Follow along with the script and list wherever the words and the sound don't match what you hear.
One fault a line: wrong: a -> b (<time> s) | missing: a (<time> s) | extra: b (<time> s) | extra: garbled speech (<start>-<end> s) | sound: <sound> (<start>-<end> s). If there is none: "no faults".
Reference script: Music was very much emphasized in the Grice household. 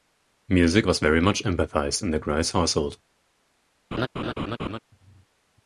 sound: laugh (3.9-4.8 s)